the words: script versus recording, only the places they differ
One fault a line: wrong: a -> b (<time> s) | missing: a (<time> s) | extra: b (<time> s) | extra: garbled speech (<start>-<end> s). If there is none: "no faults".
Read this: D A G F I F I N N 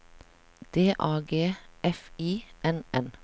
missing: F I (2.5 s)